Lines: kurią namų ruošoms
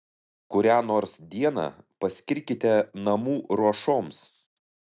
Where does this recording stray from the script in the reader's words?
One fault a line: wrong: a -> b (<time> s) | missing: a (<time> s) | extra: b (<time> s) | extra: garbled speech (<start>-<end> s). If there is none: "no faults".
extra: nors dieną paskirkite (0.9 s)